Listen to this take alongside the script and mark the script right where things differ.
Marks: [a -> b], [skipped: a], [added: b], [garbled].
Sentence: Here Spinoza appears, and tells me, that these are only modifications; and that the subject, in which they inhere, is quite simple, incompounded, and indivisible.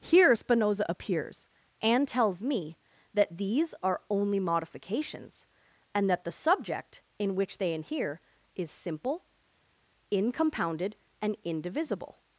Here Spinoza appears, and tells me, that these are only modifications; and that the subject, in which they inhere, is [skipped: quite] simple, incompounded, and indivisible.